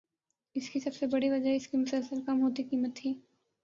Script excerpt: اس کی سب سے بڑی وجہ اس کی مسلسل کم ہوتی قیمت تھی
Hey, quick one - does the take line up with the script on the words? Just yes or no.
yes